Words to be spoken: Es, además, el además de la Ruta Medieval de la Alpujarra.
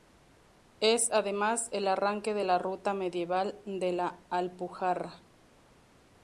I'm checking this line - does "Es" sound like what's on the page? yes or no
yes